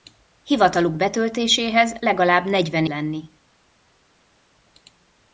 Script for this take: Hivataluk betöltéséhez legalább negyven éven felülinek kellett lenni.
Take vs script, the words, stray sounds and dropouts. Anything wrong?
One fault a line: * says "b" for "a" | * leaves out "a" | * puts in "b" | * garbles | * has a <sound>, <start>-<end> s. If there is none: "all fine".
* leaves out "éven felülinek kellett"